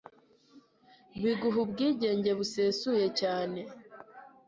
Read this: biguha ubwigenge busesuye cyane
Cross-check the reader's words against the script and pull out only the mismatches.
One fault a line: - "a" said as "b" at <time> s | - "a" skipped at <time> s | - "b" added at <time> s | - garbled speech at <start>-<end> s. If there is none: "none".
none